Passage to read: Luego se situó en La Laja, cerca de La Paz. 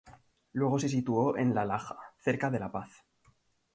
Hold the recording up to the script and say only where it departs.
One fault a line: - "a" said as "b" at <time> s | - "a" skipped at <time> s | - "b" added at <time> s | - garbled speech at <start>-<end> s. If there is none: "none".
none